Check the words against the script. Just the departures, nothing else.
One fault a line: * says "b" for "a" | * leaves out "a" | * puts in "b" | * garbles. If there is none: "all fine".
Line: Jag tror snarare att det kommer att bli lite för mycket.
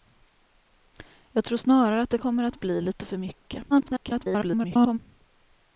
* garbles